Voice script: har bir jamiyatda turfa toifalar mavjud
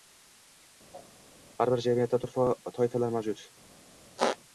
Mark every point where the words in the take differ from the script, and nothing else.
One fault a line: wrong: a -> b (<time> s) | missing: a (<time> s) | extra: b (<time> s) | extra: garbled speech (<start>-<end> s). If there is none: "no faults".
no faults